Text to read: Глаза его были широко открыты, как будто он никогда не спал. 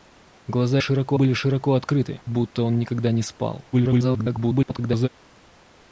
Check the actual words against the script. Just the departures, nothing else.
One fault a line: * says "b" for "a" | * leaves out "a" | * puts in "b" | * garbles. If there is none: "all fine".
* says "широко" for "его"
* leaves out "как"
* garbles